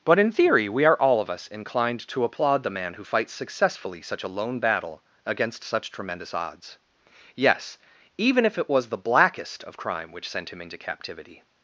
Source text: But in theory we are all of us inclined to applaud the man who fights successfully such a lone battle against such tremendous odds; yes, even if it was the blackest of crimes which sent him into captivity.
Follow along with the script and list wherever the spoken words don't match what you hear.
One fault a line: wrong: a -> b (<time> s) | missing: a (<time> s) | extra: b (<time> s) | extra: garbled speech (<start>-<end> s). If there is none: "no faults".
wrong: crimes -> crime (9.8 s)